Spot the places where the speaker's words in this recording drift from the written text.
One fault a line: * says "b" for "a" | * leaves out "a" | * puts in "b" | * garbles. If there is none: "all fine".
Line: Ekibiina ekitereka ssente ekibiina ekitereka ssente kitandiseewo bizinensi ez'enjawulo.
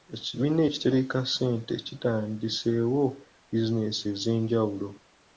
* leaves out "ekibiina ekitereka ssente"